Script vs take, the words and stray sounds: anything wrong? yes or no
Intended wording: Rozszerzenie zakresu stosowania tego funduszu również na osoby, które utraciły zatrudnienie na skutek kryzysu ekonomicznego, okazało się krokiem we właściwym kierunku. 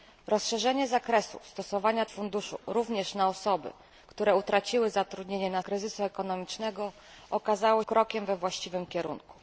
yes